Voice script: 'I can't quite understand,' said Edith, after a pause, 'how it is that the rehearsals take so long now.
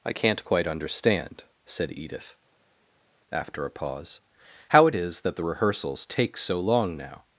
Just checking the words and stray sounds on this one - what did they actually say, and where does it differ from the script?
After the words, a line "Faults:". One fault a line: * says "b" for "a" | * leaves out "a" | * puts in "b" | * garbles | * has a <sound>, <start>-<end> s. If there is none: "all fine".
'I can't quite understand,' said Edith, after a pause, 'how it is that the rehearsals take so long now.
Faults:
all fine